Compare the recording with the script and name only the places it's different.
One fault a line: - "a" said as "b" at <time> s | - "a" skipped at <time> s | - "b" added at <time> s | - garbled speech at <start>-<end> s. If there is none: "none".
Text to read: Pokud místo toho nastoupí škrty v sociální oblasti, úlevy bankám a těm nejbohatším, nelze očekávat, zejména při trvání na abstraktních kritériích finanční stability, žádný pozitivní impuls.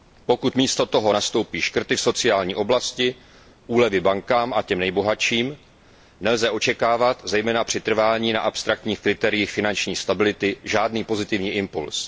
none